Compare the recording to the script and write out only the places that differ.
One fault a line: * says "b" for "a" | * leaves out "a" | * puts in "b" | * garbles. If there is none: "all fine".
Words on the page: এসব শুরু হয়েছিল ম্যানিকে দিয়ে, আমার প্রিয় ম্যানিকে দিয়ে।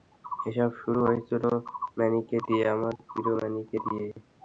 all fine